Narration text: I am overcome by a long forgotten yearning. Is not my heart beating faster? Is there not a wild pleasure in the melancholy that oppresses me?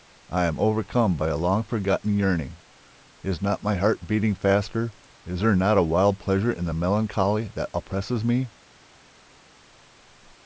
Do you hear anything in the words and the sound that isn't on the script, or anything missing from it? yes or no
no